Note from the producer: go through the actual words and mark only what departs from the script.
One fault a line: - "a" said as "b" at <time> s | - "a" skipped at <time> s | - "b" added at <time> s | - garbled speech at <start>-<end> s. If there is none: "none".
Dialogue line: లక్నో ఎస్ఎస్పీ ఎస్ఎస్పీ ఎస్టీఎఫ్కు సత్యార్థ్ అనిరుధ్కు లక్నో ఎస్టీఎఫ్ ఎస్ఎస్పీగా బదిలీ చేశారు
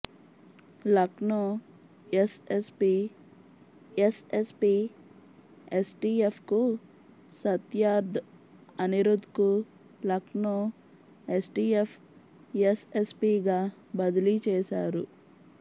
none